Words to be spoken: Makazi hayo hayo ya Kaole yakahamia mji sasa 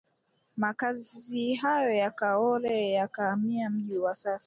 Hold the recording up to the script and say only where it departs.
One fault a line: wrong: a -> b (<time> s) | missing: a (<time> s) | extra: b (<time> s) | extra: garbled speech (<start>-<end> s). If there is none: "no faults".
missing: hayo (1.9 s)
extra: wa (4.0 s)